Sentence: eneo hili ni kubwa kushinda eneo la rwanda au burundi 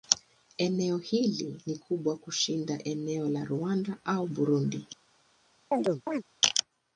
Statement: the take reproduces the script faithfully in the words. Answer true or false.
true